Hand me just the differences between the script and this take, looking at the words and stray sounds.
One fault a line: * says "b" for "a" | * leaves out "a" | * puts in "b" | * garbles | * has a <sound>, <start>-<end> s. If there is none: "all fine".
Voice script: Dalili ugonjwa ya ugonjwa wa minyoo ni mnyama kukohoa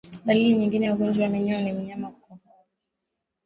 * says "nyingine" for "ugonjwa"